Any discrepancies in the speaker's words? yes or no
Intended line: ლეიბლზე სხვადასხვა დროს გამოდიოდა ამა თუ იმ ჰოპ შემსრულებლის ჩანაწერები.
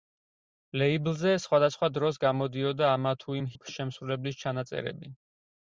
no